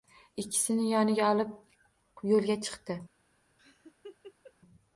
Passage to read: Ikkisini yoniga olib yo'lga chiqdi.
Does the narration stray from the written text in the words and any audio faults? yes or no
yes